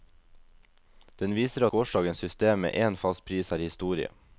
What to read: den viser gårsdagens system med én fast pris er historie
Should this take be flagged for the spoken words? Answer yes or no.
no